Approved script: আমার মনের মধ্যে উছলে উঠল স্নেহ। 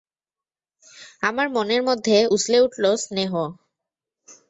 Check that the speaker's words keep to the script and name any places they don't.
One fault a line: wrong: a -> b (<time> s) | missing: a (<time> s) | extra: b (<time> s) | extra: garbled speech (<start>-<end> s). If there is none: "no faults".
no faults